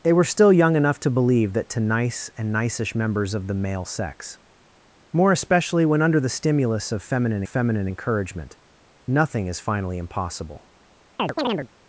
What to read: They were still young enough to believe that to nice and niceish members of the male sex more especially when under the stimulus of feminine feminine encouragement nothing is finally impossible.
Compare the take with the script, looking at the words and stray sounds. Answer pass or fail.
fail